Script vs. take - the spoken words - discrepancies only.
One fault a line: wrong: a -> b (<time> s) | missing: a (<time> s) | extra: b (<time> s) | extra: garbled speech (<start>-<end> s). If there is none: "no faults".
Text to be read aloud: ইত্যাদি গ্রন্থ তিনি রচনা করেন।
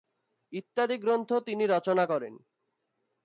no faults